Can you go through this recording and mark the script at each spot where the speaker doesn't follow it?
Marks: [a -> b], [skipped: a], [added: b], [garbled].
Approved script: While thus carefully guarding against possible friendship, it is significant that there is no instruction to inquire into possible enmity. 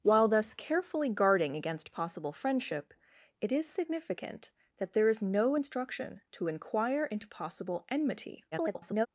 While thus carefully guarding against possible friendship, it is significant that there is no instruction to inquire into possible enmity. [garbled]